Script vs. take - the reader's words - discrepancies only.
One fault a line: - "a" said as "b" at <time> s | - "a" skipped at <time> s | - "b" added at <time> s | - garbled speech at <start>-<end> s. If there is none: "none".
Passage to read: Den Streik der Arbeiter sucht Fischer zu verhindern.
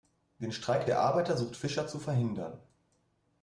none